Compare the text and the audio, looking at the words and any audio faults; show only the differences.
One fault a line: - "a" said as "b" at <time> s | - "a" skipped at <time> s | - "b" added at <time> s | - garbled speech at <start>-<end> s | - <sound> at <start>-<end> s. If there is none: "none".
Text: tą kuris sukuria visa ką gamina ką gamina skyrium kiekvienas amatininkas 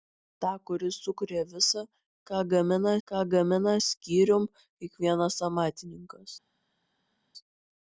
none